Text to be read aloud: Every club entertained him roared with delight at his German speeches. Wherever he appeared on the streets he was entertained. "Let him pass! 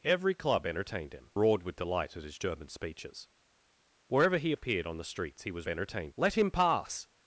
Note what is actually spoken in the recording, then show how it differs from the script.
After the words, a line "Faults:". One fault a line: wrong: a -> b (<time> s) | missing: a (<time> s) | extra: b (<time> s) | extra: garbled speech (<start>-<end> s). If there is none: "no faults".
Every club entertained him roared with delight at his German speeches. Wherever he appeared on the streets he was entertained. "Let him pass!
Faults:
no faults